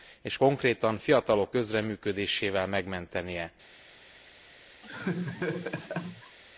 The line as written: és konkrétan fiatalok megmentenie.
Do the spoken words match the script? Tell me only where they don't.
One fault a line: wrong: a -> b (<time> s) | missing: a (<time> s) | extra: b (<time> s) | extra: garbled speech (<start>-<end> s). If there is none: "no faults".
extra: közreműködésével (1.5 s)